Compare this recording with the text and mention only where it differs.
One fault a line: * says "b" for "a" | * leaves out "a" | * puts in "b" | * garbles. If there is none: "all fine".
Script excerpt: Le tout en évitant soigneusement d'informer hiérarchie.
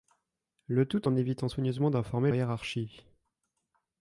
all fine